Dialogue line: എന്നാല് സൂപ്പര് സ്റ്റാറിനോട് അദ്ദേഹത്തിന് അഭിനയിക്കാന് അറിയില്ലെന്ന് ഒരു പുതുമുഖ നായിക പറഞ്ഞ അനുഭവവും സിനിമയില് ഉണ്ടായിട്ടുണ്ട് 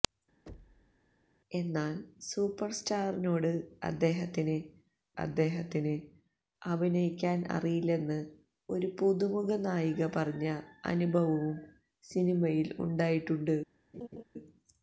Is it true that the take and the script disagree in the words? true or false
true